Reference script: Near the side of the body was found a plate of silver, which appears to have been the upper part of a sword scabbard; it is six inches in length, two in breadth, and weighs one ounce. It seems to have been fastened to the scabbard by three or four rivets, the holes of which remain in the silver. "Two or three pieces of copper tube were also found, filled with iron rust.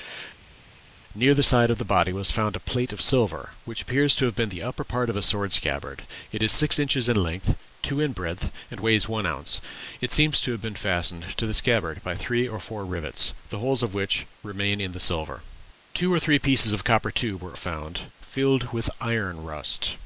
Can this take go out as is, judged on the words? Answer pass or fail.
fail